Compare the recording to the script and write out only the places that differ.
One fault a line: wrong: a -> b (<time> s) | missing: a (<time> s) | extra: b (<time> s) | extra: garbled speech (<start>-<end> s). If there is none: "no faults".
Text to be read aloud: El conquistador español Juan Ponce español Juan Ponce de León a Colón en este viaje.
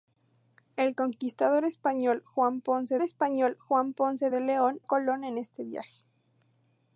no faults